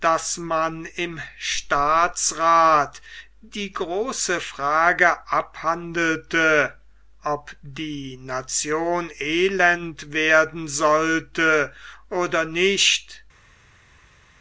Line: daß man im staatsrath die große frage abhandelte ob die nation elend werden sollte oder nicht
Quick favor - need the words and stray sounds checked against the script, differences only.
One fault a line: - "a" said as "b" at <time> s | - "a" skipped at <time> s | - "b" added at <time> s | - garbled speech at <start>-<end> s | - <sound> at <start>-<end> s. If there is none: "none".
none